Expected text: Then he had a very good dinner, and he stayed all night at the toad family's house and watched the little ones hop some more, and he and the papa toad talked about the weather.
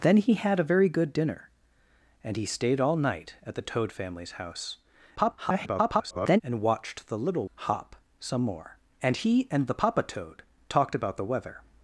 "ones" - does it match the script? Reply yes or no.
no